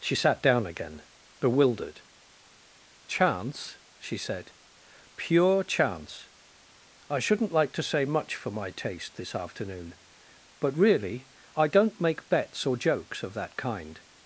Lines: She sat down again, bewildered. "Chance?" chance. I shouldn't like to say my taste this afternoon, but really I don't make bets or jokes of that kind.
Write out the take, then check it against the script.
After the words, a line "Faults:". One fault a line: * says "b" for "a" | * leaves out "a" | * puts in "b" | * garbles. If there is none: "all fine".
She sat down again, bewildered. "Chance?" she said. "Pure chance. I shouldn't like to say much for my taste this afternoon, but really I don't make bets or jokes of that kind.
Faults:
* puts in "she said Pure"
* puts in "much for"